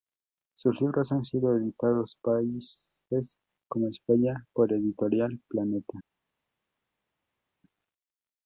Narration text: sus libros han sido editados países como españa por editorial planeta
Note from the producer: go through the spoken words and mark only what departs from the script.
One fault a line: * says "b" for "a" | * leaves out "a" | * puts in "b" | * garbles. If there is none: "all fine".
all fine